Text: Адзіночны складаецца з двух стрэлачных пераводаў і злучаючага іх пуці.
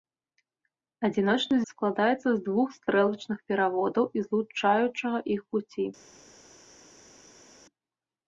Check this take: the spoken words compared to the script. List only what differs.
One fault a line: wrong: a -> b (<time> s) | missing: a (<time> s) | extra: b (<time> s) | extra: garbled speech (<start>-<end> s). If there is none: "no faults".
no faults